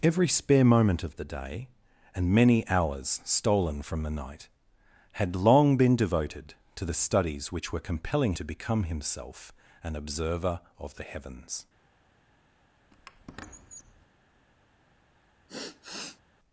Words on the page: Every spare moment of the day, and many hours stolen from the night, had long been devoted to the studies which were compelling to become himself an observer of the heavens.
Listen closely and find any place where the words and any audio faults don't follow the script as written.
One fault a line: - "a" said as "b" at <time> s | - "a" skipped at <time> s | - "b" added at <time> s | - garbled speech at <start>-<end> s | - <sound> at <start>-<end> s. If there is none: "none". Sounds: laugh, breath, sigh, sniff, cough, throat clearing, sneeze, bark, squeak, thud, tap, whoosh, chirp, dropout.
- squeak at 12.9-14.1 s
- sigh at 15.5-16.2 s